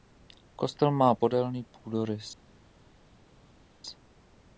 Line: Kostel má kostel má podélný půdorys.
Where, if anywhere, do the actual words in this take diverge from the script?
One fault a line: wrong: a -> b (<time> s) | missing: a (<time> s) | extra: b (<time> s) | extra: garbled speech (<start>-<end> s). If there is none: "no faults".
missing: kostel má (1.1 s)